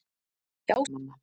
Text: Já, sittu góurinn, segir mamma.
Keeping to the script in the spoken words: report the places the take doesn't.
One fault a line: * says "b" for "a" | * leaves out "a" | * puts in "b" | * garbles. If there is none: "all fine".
* leaves out "sittu góurinn segir"